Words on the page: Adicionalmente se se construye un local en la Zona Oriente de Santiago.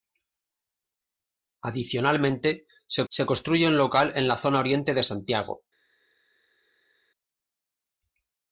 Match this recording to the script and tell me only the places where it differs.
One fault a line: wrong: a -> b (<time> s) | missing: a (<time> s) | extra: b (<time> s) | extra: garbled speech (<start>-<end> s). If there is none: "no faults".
no faults